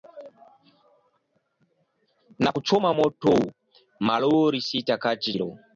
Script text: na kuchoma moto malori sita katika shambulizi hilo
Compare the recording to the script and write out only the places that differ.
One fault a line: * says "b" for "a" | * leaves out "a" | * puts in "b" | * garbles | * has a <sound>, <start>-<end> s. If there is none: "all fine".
* leaves out "shambulizi"